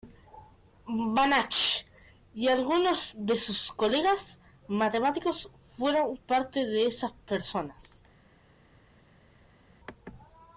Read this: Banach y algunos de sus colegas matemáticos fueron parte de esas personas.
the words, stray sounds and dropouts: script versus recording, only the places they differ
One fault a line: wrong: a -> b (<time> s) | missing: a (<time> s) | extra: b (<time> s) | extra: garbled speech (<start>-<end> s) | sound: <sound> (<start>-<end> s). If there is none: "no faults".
no faults